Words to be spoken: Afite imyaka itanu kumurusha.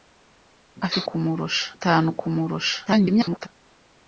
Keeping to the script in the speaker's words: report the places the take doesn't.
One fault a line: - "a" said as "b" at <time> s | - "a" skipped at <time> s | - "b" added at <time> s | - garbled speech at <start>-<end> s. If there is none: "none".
- "imyaka" said as "kumurusha" at 1.1 s
- garbled speech at 2.9-3.5 s